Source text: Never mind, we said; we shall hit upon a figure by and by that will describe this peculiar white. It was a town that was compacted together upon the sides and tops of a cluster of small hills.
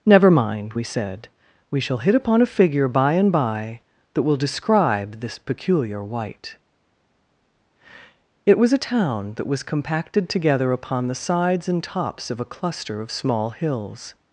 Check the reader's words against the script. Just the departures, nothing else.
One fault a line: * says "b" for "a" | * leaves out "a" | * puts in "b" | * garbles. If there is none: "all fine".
all fine